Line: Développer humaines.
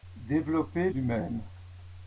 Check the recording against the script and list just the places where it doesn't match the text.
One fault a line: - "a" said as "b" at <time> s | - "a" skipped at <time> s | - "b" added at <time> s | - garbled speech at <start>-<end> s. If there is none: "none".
none